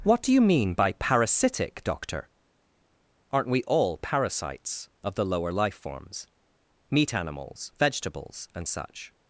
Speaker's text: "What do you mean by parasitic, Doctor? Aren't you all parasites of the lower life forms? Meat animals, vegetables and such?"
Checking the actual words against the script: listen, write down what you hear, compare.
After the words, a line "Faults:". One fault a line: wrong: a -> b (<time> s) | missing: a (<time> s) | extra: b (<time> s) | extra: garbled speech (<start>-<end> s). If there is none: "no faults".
"What do you mean by parasitic, Doctor? Aren't we all parasites of the lower life forms? Meat animals, vegetables and such?"
Faults:
wrong: you -> we (3.5 s)